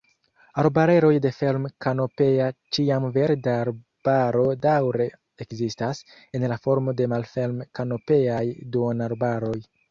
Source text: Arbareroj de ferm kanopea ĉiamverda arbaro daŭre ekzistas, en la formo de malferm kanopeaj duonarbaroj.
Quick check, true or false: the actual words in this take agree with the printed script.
true